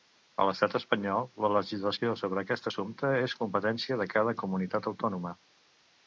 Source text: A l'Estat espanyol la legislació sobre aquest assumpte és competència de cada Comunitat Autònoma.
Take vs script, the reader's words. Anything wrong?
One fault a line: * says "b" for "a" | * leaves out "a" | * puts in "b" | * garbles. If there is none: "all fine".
all fine